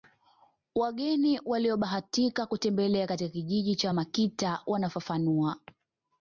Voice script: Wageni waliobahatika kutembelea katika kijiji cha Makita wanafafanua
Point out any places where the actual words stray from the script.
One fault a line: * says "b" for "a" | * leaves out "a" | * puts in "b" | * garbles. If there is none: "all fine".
all fine